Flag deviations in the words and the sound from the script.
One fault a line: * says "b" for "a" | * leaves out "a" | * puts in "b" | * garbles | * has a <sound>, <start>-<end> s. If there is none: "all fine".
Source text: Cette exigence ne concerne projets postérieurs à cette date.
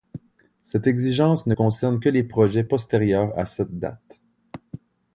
* puts in "que les"